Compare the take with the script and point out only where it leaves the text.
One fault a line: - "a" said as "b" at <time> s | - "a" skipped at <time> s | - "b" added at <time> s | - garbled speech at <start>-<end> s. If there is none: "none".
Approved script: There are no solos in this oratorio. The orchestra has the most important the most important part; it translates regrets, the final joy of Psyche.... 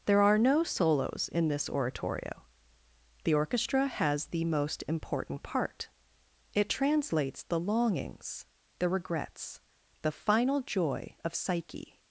- "the most important part it translates" said as "part it translates the longings the" at 5.4 s